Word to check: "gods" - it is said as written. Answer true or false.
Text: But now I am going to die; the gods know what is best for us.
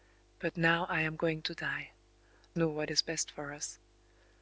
false